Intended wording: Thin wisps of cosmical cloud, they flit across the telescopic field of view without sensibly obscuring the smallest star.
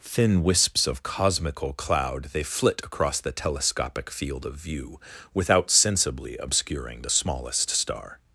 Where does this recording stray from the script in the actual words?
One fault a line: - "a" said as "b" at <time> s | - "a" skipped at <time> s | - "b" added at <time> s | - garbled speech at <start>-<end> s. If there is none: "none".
none